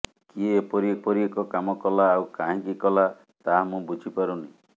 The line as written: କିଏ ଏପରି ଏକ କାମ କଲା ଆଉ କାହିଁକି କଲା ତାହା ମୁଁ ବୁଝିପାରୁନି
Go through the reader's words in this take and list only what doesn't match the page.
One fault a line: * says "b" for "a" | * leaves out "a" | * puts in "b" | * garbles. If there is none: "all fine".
* puts in "ଏପରି"